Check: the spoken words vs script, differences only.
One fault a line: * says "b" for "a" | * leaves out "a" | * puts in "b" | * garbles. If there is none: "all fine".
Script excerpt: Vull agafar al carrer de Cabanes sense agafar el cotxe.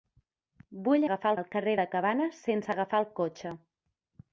all fine